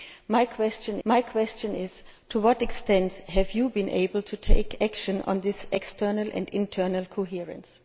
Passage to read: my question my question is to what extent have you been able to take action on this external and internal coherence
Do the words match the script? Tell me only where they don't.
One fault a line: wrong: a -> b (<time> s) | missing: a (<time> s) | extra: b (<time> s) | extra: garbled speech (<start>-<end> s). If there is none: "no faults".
no faults